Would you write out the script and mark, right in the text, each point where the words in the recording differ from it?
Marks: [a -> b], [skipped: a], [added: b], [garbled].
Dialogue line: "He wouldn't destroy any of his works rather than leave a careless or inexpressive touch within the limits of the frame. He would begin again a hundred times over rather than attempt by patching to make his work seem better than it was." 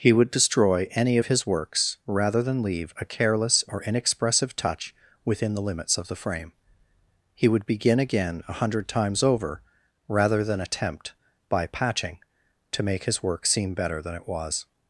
"He [wouldn't -> would] destroy any of his works rather than leave a careless or inexpressive touch within the limits of the frame. He would begin again a hundred times over rather than attempt by patching to make his work seem better than it was."